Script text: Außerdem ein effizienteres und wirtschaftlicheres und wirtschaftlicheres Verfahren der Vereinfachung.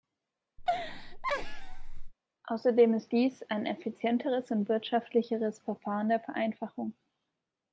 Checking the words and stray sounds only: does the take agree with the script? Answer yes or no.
no